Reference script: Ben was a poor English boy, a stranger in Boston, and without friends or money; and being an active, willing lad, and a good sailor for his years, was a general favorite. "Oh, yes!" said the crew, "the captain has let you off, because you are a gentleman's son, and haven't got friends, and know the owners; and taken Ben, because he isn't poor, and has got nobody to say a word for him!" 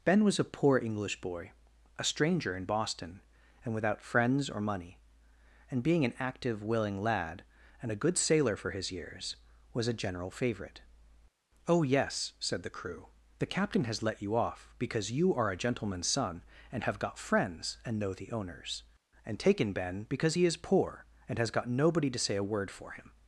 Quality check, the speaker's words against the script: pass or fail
fail